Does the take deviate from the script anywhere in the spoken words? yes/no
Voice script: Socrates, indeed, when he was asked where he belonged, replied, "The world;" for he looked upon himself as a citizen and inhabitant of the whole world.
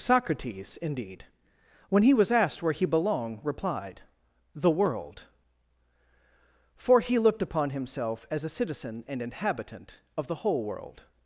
no